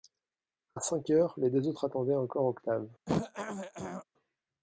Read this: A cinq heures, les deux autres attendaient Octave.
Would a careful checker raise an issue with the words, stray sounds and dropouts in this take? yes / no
yes